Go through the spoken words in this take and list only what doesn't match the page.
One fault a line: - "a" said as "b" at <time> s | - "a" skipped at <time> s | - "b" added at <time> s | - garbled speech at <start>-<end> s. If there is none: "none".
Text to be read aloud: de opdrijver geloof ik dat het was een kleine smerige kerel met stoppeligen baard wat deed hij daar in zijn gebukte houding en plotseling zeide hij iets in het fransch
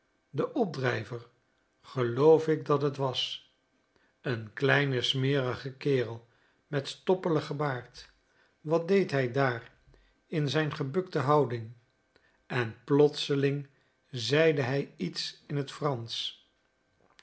none